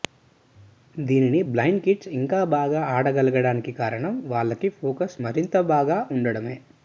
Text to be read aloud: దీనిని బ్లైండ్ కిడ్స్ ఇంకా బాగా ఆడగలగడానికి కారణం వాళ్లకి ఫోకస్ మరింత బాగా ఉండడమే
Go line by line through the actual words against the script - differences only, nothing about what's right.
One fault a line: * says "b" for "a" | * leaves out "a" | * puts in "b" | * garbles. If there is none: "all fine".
all fine